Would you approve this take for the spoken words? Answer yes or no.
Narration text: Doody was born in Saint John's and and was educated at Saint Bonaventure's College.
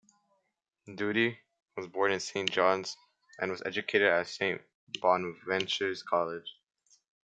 no